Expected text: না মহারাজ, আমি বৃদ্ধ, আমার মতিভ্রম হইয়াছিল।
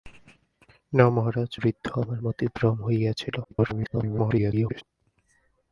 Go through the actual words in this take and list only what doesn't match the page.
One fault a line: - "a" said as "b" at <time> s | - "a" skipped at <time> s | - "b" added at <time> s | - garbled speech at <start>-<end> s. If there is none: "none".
- "আমি" skipped at 1.5 s
- garbled speech at 3.4-4.8 s